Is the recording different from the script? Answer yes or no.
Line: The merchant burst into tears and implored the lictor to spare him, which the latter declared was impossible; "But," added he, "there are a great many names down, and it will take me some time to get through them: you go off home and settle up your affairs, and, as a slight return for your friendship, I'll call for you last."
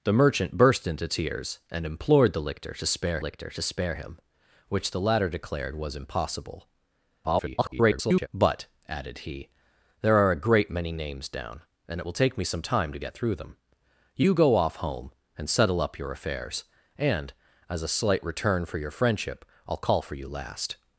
yes